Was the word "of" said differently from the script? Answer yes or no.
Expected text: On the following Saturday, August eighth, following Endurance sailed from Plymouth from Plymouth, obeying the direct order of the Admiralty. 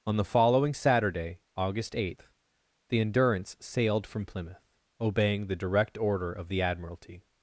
no